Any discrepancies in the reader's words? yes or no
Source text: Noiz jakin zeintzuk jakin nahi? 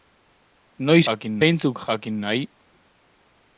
no